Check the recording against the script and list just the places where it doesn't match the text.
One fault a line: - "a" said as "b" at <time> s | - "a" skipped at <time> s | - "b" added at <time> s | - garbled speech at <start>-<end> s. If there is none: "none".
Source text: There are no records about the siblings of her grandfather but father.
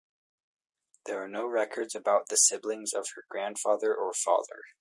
- "but" said as "or" at 4.0 s